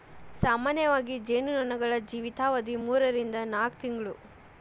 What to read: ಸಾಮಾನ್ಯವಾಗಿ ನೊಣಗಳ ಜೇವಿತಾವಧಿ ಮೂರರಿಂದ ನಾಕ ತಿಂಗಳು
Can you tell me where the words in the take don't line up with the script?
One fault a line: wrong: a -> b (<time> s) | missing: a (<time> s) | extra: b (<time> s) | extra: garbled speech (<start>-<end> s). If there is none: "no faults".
extra: ಜೇನು (1.3 s)